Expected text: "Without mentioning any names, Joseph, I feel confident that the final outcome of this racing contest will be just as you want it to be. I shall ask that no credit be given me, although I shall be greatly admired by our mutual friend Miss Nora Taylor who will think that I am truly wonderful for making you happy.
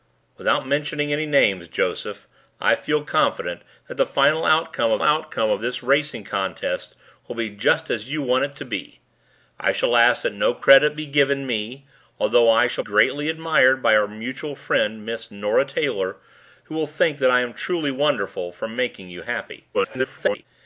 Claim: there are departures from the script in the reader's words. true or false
true